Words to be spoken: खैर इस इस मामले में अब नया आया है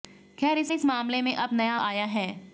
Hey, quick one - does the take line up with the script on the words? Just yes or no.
yes